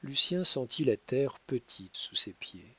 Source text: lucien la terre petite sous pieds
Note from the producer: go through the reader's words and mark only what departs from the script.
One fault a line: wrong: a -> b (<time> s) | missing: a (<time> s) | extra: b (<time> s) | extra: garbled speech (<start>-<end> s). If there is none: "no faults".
extra: sentit (0.4 s)
extra: ses (2.2 s)